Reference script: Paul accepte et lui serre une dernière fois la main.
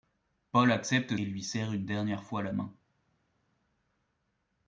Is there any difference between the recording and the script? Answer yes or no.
no